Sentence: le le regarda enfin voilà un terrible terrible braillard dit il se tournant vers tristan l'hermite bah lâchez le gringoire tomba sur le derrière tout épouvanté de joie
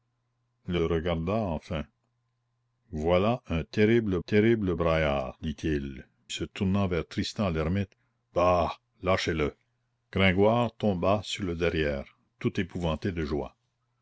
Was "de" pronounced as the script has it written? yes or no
yes